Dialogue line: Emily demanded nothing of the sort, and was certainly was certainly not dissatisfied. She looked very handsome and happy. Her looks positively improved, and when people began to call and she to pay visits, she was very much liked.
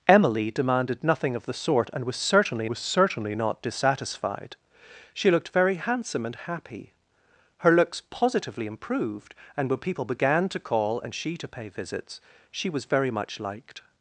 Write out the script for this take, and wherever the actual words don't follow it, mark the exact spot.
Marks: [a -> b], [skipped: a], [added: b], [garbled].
Emily demanded nothing of the sort, and was certainly was certainly not dissatisfied. She looked very handsome and happy. Her looks positively improved, and when people began to call and she to pay visits, she was very much liked.